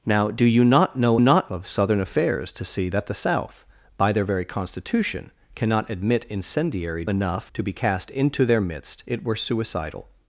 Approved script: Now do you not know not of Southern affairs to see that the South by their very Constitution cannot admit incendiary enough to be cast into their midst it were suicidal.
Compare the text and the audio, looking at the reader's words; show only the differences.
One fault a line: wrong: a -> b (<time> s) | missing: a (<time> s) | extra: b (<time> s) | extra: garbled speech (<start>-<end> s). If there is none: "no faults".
no faults